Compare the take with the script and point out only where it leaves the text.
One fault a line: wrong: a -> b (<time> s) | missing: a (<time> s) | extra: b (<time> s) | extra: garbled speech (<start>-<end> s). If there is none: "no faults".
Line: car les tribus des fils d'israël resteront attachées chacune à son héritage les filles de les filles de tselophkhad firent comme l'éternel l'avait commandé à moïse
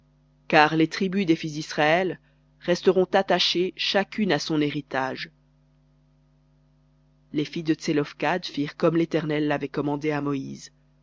missing: les filles de (7.7 s)